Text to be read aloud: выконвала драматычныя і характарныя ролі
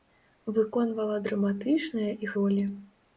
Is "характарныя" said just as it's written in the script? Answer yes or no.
no